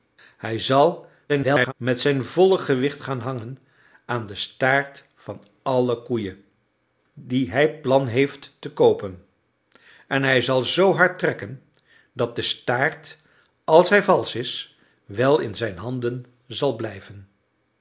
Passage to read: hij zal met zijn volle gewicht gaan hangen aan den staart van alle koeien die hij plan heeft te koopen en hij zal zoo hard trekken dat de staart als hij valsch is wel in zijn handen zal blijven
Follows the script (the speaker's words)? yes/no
no